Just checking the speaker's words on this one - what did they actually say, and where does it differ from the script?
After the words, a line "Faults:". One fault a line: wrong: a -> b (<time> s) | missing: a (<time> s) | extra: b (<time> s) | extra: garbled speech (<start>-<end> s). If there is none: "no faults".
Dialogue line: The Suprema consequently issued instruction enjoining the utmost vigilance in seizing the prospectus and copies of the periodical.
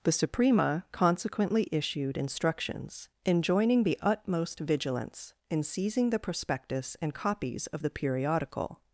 The Suprema consequently issued instructions enjoining the utmost vigilance in seizing the prospectus and copies of the periodical.
Faults:
wrong: instruction -> instructions (2.2 s)